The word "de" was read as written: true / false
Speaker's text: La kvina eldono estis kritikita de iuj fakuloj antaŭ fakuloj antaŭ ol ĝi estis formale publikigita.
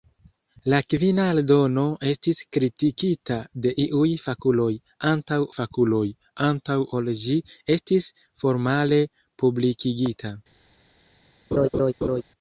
true